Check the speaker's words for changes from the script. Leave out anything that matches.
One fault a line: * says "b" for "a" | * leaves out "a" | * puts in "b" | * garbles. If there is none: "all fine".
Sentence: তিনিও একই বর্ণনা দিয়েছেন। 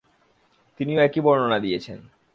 all fine